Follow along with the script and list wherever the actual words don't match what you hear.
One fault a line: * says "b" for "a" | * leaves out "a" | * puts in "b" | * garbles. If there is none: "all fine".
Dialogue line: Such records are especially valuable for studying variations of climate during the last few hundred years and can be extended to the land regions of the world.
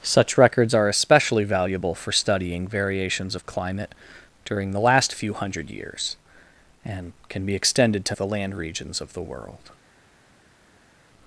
all fine